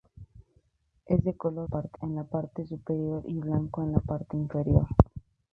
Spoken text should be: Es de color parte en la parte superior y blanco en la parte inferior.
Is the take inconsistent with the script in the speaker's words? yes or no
no